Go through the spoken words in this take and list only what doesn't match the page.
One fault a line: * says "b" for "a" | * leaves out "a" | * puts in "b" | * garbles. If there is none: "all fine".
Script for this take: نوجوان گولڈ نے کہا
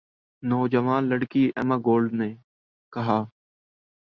* puts in "لڑکی ایما"